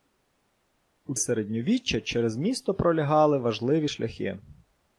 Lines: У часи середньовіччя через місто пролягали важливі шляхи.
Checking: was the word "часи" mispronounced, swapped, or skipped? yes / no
yes